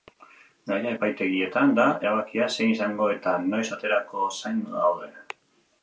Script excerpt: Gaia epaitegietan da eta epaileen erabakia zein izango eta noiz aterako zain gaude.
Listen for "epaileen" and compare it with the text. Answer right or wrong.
wrong